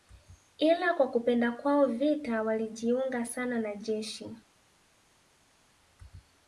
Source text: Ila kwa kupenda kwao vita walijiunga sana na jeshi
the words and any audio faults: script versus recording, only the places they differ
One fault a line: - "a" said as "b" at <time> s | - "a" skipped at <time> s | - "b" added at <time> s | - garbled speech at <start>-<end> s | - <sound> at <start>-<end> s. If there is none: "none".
none